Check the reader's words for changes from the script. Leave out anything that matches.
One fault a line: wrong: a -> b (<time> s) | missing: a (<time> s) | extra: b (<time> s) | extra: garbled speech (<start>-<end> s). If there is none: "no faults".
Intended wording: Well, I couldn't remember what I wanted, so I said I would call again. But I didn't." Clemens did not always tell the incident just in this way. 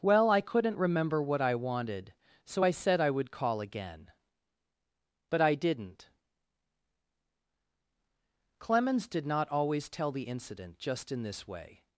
no faults